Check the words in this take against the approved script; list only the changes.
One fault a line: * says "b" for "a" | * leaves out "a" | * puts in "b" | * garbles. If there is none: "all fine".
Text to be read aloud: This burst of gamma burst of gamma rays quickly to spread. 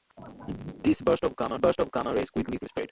all fine